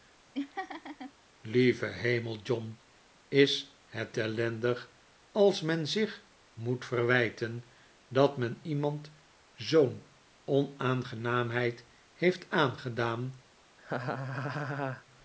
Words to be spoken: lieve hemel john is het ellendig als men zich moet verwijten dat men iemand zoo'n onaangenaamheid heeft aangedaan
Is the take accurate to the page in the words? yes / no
yes